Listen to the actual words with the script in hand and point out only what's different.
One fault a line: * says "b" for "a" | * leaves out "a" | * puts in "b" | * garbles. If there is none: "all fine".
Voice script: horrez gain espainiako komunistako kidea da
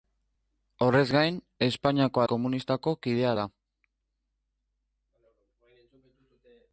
all fine